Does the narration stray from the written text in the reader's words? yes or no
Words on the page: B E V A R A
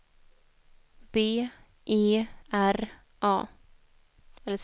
yes